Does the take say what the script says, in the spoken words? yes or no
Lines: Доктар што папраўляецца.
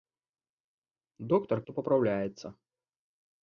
yes